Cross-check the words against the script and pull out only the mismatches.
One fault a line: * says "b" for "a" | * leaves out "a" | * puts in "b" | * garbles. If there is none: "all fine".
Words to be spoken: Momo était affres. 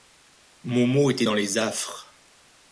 * puts in "dans les"